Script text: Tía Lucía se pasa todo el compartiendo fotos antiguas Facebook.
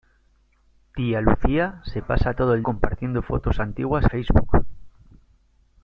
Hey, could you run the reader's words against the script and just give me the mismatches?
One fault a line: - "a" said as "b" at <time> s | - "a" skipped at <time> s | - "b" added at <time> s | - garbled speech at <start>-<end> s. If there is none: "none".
none